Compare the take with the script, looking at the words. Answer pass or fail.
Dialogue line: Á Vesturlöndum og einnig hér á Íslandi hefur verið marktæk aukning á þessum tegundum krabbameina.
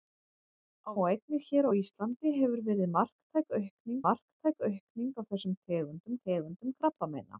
fail